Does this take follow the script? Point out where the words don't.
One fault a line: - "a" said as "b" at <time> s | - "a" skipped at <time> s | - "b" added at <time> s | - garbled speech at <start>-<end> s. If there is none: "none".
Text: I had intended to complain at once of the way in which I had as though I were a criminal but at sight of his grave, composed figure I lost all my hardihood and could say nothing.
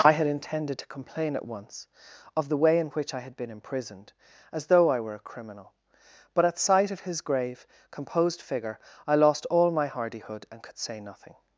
- "been imprisoned" added at 3.3 s